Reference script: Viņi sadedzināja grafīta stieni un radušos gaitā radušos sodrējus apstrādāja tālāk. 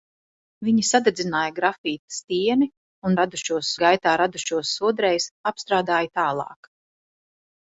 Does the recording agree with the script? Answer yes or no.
yes